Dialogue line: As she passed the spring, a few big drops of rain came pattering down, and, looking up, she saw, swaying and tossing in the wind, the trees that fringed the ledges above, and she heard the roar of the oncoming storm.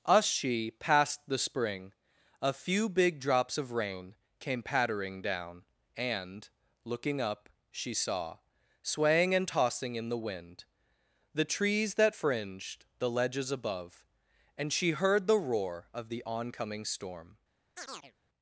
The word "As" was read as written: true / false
false